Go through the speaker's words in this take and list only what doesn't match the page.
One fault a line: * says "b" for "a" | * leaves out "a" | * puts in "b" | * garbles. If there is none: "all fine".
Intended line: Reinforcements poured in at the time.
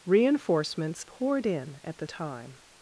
all fine